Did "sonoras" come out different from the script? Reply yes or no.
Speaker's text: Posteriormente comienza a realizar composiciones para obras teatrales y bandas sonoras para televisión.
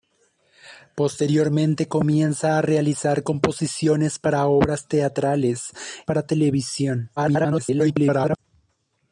yes